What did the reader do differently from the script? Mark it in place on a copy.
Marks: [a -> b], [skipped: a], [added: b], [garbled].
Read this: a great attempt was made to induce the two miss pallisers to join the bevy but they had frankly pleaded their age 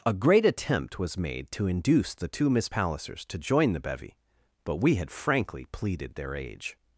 a great attempt was made to induce the two miss pallisers to join the bevy but [they -> we] had frankly pleaded their age